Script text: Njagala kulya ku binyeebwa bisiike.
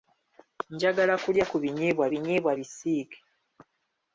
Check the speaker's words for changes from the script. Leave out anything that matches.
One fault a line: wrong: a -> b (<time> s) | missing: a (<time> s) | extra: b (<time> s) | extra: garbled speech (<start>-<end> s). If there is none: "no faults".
extra: binyeebwa (2.1 s)